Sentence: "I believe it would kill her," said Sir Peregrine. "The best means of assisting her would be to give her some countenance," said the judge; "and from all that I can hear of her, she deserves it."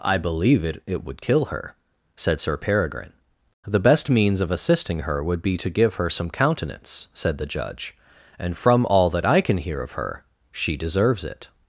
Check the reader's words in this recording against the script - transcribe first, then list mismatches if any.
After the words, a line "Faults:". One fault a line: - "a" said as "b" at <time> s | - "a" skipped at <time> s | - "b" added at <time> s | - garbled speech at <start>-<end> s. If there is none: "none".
"I believe it it would kill her," said Sir Peregrine. "The best means of assisting her would be to give her some countenance," said the judge; "and from all that I can hear of her, she deserves it."
Faults:
- "it" added at 0.9 s